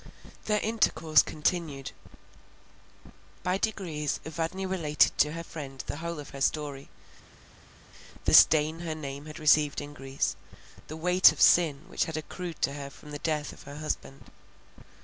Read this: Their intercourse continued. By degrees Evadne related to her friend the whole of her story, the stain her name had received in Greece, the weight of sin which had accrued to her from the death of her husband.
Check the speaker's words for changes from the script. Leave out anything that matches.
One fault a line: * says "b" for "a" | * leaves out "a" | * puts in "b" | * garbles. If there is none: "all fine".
all fine